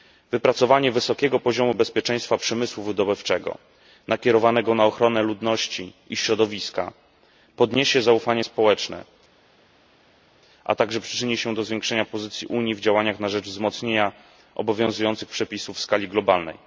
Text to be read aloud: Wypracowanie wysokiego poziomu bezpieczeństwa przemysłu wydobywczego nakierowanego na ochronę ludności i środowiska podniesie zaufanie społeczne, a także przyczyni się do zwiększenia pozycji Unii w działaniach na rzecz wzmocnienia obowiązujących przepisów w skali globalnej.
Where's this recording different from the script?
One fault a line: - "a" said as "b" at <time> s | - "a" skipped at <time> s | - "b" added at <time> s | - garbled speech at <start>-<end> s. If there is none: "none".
none